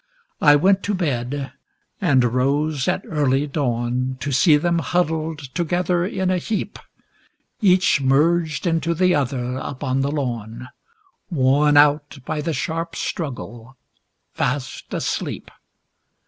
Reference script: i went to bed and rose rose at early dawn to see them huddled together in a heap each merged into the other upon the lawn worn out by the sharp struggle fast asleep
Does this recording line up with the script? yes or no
no